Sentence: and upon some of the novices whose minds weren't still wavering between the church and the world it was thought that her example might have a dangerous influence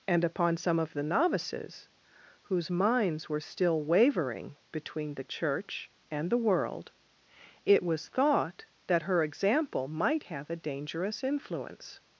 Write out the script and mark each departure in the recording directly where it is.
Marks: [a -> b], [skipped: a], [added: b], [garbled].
and upon some of the novices whose minds [weren't -> were] still wavering between the church and the world it was thought that her example might have a dangerous influence